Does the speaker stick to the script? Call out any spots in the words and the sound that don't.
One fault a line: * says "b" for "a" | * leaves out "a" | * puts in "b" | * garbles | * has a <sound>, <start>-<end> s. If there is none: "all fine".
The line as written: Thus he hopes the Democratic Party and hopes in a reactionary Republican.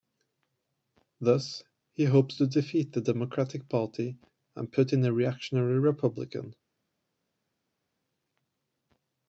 * puts in "to defeat"
* says "put" for "hopes"